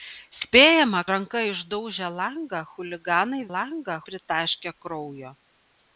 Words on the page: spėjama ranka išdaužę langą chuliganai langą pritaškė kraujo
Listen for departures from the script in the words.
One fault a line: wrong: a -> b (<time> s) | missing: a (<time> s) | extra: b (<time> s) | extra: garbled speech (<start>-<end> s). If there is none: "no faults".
no faults